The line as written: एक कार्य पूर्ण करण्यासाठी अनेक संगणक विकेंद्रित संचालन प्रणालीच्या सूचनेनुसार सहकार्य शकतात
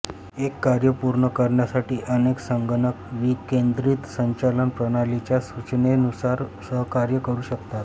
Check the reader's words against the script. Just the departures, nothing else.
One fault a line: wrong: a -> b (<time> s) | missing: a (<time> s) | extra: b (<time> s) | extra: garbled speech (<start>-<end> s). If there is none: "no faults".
extra: करू (7.2 s)